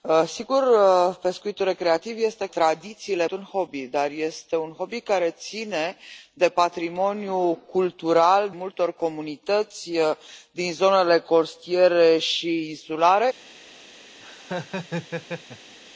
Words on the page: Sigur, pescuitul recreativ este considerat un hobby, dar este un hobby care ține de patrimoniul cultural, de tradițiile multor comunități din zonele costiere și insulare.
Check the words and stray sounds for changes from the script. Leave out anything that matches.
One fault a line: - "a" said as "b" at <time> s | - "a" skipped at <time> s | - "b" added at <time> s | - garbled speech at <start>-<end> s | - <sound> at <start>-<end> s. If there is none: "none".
- "considerat" said as "tradițiile" at 2.5 s
- "de tradițiile" skipped at 8.5 s
- laugh at 14.2-15.8 s